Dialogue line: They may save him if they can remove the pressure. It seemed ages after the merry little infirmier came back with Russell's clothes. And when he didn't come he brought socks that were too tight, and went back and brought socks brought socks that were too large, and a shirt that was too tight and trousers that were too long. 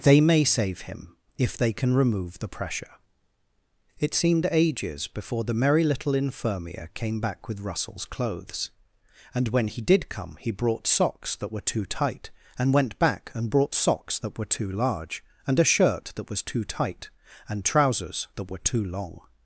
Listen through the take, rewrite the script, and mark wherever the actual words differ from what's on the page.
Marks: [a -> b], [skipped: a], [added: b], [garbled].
They may save him if they can remove the pressure. It seemed ages [after -> before] the merry little infirmier came back with Russell's clothes. And when he [didn't -> did] come he brought socks that were too tight, and went back and brought socks [skipped: brought socks] that were too large, and a shirt that was too tight and trousers that were too long.